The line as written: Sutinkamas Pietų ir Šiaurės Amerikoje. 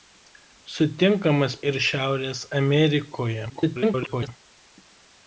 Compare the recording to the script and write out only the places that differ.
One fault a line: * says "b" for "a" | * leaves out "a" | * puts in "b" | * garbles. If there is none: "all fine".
* leaves out "Pietų"
* garbles